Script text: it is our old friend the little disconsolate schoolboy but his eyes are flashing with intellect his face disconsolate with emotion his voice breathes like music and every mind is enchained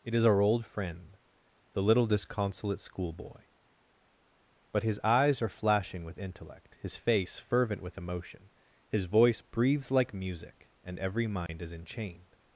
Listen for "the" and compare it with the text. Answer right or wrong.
right